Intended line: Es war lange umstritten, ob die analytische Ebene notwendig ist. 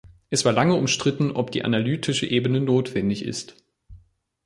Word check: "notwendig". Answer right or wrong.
right